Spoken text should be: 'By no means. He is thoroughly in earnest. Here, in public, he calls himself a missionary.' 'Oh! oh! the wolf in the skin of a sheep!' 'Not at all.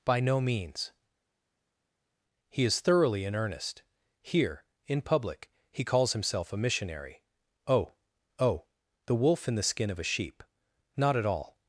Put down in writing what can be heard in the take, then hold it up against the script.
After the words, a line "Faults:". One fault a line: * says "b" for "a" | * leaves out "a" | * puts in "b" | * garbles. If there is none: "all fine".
'By no means. He is thoroughly in earnest. Here, in public, he calls himself a missionary.' 'Oh! oh! the wolf in the skin of a sheep!' 'Not at all.
Faults:
all fine